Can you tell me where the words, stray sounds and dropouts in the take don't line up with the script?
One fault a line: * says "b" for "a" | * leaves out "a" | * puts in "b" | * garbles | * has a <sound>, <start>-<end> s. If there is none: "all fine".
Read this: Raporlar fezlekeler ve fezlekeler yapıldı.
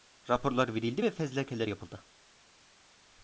* says "verildi" for "fezlekeler"